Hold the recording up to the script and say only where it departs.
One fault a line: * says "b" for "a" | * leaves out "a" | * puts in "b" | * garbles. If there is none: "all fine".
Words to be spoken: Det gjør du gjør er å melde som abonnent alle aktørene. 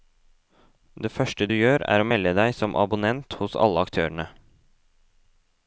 * says "første" for "gjør"
* puts in "deg"
* puts in "hos"